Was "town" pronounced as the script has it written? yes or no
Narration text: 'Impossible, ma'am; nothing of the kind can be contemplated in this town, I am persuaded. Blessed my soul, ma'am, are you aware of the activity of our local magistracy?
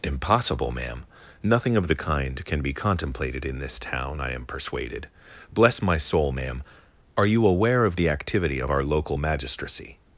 yes